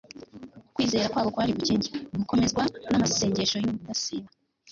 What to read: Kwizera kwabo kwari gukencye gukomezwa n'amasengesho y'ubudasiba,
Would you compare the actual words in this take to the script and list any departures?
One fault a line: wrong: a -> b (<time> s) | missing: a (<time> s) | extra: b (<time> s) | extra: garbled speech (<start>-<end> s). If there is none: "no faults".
no faults